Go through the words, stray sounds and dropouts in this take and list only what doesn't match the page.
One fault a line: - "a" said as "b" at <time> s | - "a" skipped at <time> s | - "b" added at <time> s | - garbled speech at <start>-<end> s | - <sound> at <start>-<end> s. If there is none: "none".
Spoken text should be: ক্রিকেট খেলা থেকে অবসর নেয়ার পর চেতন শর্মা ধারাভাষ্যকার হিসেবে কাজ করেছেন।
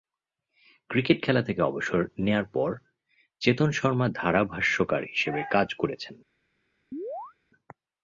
- chirp at 6.9-7.3 s